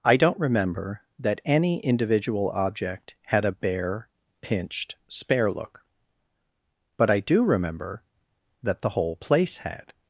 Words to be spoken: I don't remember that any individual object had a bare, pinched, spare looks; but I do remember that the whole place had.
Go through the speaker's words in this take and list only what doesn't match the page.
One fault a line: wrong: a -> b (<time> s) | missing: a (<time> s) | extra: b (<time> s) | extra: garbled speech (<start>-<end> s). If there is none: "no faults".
wrong: looks -> look (5.5 s)